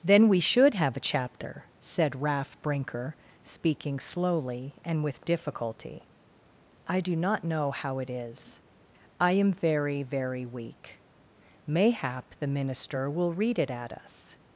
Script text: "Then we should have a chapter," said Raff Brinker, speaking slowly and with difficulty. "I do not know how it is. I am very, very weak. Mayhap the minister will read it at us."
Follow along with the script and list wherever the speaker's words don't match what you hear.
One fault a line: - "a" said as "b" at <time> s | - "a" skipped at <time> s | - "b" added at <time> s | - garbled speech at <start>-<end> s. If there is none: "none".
none